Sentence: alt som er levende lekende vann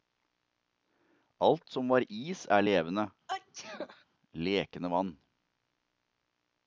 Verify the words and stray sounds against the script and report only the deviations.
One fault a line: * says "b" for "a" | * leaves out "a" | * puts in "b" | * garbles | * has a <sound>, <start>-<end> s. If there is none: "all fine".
* puts in "var is"
* has a sneeze, 3.3-4.0 s